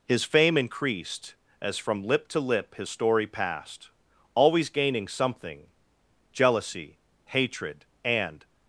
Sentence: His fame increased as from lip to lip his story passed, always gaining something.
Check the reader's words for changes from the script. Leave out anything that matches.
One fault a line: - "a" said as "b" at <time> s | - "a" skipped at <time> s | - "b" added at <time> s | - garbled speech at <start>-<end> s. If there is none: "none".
- "Jealousy hatred and" added at 6.3 s